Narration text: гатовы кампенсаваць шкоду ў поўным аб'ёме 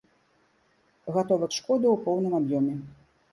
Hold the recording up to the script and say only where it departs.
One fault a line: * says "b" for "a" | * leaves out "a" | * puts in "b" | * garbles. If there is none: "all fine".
* leaves out "кампенсаваць"